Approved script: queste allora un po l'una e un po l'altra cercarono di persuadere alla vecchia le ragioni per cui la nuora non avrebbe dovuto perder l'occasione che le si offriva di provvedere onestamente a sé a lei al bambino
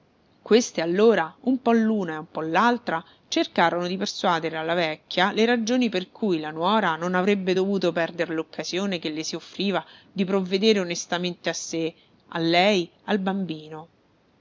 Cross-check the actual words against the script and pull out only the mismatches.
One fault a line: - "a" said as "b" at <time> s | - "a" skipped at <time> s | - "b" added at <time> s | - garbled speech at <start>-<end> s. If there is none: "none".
none